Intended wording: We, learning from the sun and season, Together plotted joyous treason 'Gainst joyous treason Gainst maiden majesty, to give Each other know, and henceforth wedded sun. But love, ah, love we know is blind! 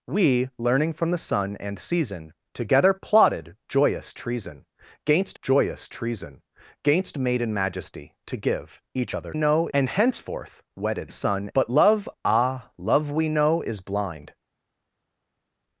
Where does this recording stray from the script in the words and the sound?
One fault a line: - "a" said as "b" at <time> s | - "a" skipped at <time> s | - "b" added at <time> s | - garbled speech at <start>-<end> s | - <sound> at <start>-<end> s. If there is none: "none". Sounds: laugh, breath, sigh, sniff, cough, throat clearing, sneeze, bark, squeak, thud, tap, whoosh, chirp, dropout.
none